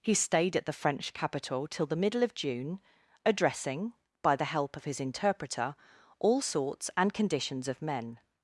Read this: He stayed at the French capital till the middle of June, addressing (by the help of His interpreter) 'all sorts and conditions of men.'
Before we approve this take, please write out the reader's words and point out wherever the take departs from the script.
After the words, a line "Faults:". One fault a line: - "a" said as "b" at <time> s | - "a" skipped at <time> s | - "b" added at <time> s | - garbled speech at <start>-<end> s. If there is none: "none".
He stayed at the French capital till the middle of June, addressing (by the help of His interpreter) 'all sorts and conditions of men.'
Faults:
none